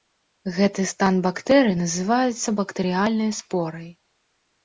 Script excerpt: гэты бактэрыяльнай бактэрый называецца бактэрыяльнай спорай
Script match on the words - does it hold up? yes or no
no